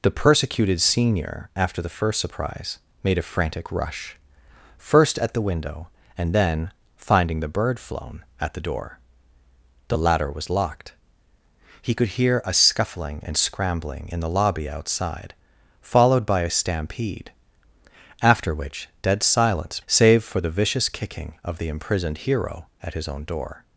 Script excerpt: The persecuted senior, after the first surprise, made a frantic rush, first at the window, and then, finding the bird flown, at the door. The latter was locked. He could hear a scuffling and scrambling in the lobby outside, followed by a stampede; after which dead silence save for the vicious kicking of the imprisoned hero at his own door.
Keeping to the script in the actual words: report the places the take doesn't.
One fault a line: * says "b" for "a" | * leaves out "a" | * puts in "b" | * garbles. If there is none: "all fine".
all fine